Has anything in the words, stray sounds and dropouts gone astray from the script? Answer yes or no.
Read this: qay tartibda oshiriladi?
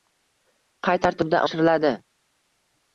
no